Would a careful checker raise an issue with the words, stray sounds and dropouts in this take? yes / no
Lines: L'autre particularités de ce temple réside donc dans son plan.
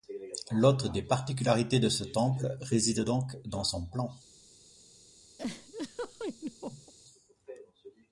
yes